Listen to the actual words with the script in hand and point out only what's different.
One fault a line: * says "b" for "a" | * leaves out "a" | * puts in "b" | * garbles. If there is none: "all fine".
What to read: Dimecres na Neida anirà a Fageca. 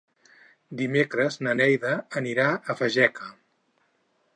all fine